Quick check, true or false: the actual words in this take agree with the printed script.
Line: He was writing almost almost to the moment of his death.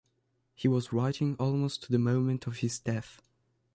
false